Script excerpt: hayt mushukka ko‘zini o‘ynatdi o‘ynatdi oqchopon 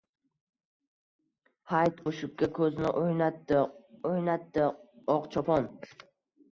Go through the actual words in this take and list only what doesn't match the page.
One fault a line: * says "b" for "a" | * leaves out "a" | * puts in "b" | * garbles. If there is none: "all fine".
all fine